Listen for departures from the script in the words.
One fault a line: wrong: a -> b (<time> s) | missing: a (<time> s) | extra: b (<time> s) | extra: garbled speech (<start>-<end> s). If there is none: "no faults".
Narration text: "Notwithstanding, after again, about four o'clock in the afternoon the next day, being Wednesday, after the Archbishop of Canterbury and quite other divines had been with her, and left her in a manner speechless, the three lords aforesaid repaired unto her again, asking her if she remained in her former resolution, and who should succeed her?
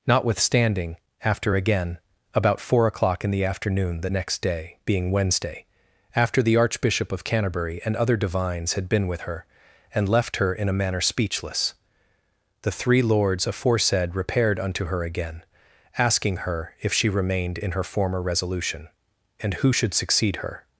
missing: quite (7.9 s)